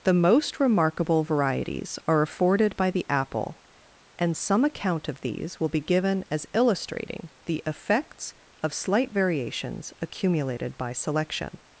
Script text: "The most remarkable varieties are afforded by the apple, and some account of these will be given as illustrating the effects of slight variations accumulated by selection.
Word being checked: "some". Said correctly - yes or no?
yes